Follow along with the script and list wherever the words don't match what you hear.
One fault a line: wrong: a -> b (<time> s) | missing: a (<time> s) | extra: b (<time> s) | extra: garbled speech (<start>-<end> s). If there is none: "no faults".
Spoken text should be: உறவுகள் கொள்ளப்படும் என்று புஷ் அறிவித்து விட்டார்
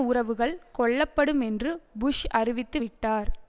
no faults